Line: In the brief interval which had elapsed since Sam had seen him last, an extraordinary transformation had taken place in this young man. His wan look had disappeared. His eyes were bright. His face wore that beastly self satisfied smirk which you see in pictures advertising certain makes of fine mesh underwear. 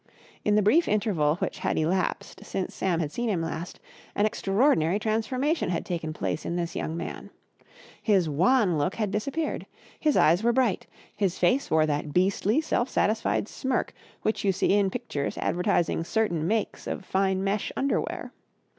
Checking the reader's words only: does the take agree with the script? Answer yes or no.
yes